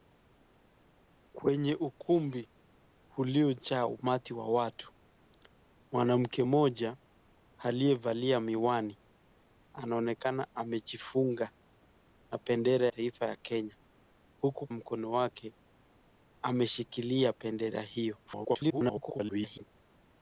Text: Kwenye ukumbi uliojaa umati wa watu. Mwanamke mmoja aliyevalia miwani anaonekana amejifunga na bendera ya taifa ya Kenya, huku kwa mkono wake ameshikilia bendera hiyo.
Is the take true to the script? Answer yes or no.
no